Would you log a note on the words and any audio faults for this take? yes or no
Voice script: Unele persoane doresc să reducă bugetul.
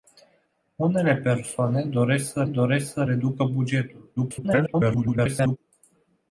yes